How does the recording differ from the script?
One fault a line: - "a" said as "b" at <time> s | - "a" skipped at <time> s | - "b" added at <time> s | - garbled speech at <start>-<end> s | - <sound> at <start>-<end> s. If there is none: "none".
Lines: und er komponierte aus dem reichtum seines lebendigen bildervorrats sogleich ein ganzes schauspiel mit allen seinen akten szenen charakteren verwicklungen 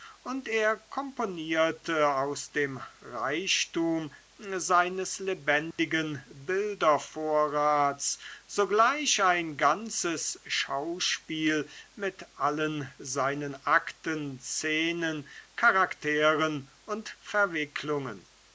- dropout at 5.7-5.8 s
- "und" added at 16.9 s